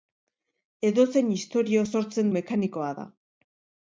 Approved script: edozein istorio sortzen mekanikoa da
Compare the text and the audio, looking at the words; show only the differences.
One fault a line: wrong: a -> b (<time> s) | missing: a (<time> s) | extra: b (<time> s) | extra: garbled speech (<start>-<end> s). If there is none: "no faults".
no faults